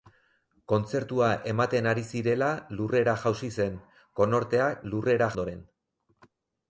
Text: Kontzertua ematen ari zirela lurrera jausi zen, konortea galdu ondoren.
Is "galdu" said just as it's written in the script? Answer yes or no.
no